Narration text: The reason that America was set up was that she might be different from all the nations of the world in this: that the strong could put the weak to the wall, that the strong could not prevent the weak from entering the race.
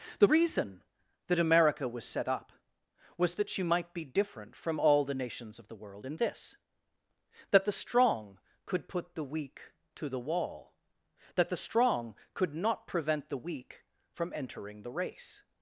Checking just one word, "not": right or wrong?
right